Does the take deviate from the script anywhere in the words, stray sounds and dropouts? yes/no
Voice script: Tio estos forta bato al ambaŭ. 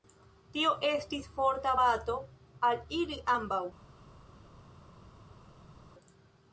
yes